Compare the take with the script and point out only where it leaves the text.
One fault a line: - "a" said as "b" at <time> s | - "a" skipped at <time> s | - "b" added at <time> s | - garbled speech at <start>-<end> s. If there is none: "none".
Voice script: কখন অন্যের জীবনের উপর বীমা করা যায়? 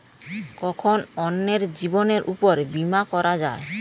none